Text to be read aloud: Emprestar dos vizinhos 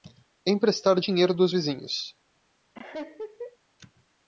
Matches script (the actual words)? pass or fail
fail